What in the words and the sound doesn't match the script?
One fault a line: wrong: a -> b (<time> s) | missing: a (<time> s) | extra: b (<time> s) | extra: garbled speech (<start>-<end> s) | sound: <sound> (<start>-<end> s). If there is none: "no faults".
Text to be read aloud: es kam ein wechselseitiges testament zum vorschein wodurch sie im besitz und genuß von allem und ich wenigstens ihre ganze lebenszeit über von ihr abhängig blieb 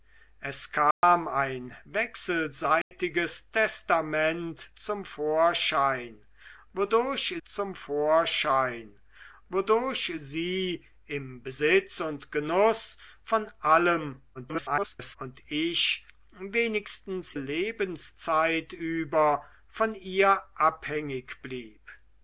sound: dropout (0.9-1.0 s)
sound: dropout (2.8-2.9 s)
extra: zum vorschein wodurch (7.4 s)
extra: garbled speech (14.3-15.2 s)
missing: ihre ganze (17.3 s)